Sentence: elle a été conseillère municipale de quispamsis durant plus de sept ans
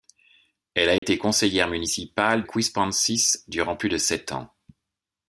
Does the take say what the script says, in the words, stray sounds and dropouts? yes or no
no